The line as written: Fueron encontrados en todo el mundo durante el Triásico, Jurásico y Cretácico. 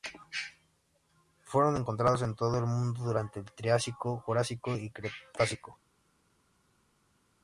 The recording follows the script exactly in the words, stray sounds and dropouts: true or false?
true